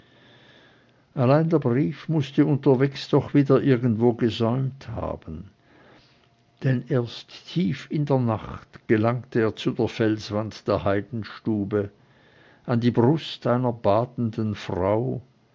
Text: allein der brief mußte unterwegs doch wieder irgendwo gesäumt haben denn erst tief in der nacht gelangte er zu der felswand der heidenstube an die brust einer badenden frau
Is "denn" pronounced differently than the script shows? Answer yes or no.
no